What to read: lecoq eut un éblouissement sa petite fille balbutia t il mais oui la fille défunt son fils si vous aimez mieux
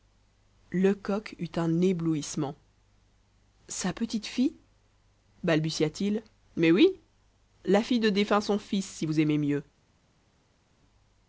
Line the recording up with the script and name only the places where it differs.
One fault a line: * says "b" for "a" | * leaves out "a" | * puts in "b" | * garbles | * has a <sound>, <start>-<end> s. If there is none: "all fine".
* puts in "de"